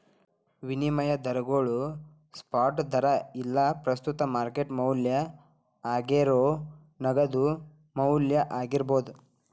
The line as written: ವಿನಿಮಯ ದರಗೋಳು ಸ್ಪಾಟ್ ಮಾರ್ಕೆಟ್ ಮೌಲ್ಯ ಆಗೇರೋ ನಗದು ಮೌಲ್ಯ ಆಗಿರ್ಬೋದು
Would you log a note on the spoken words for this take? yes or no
yes